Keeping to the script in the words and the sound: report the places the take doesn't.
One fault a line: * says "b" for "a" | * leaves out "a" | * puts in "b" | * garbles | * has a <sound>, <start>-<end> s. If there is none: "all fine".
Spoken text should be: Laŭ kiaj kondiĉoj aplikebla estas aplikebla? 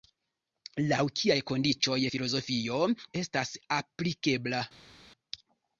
* says "filozofio" for "aplikebla"